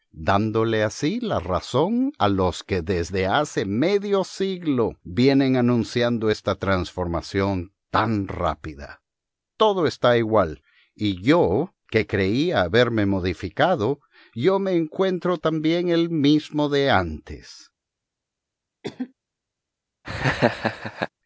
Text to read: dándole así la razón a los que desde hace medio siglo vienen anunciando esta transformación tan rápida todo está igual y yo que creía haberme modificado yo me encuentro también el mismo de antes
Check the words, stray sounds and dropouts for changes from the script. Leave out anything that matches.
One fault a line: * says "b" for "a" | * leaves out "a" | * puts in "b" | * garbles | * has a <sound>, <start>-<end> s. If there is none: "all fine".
* has a cough, 18.8-19.1 s
* has a laugh, 20.0-21.1 s